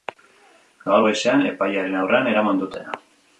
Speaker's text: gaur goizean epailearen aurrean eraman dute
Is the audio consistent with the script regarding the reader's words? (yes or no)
yes